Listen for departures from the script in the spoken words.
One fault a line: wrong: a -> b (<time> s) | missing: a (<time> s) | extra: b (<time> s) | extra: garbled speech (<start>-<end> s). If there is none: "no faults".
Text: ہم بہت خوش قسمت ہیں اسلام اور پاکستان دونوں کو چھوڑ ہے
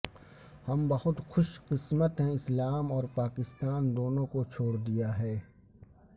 extra: دیا (4.8 s)